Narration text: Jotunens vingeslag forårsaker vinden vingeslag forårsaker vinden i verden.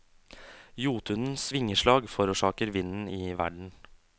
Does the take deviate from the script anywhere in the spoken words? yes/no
yes